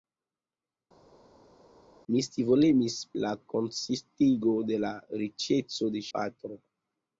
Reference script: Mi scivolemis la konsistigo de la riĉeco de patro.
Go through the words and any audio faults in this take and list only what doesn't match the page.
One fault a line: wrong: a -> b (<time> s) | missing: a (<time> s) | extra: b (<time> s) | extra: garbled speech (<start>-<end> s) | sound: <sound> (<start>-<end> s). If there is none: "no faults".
no faults